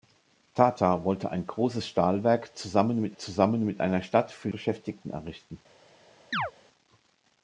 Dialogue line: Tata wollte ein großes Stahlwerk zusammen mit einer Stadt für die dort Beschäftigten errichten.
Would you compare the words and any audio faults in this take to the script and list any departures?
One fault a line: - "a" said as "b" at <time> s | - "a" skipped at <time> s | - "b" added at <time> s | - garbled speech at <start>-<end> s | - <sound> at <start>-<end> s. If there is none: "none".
- "zusammen mit" added at 3.2 s
- "die dort" skipped at 4.5 s
- chirp at 6.3-6.5 s